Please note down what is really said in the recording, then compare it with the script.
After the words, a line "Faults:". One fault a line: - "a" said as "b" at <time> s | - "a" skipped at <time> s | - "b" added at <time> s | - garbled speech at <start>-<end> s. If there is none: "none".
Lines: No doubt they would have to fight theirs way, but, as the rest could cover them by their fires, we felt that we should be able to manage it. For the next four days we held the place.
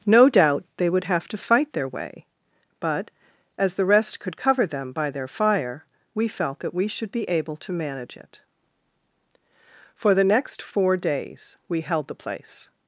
No doubt they would have to fight their way, but, as the rest could cover them by their fire, we felt that we should be able to manage it. For the next four days we held the place.
Faults:
- "theirs" said as "their" at 1.7 s
- "fires" said as "fire" at 5.3 s